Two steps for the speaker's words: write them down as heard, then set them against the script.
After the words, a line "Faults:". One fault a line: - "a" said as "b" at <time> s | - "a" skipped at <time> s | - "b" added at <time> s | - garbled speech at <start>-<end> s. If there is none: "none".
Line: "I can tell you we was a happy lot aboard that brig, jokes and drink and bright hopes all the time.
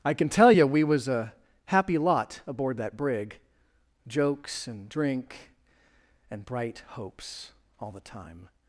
"I can tell you we was a happy lot aboard that brig, jokes and drink and bright hopes all the time.
Faults:
none